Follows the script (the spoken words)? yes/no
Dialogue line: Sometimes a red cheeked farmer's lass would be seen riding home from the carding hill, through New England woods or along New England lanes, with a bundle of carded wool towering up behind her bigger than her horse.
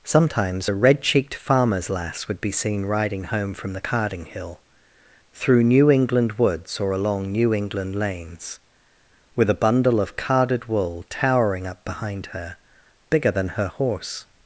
yes